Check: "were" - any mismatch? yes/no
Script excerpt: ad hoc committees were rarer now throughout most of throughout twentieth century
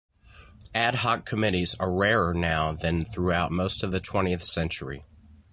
yes